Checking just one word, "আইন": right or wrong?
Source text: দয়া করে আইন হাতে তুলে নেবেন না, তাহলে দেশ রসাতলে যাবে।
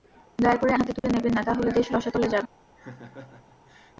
wrong